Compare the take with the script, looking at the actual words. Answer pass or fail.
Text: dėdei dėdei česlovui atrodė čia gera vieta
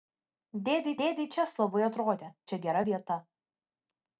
pass